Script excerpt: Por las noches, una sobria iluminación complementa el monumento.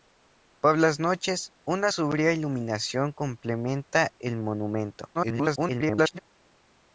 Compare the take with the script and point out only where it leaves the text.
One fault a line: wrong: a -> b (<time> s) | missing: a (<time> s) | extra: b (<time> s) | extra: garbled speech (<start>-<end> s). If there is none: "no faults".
extra: garbled speech (5.1-6.2 s)